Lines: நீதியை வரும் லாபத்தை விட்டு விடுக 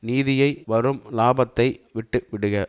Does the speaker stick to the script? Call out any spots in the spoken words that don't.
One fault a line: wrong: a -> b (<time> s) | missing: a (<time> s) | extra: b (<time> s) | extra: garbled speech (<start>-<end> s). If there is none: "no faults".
no faults